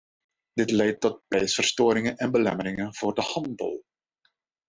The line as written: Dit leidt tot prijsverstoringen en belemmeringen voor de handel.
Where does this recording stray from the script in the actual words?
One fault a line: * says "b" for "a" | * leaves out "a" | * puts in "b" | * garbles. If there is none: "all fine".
all fine